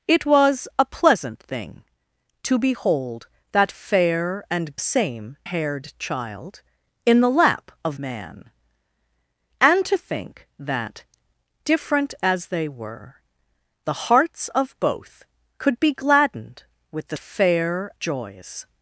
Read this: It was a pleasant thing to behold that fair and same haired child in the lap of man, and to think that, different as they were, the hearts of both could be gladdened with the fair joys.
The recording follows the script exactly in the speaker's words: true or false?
true